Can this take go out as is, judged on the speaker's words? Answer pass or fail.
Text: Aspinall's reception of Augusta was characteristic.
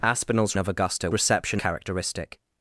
fail